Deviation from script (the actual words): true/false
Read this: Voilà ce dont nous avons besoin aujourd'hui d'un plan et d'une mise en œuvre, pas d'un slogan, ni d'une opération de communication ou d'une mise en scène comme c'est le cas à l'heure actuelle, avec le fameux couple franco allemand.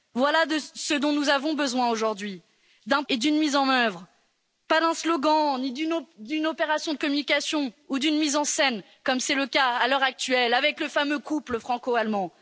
true